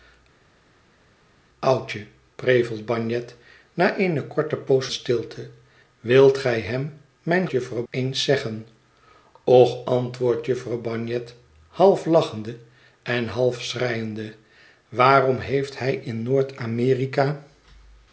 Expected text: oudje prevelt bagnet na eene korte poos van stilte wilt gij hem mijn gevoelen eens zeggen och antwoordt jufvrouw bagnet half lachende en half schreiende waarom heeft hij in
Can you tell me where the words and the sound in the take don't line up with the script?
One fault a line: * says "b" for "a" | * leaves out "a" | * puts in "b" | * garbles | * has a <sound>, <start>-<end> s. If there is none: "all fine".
* leaves out "van"
* says "jufvrouw" for "gevoelen"